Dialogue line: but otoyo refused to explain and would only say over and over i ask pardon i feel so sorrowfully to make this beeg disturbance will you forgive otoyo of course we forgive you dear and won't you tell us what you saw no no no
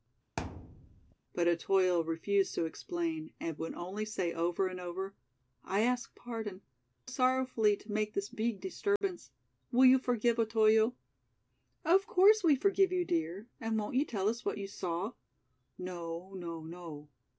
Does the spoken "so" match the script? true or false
false